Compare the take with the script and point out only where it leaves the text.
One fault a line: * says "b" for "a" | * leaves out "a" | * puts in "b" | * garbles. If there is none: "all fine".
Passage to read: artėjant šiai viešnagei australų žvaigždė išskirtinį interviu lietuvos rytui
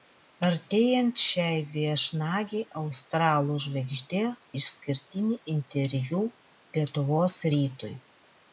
all fine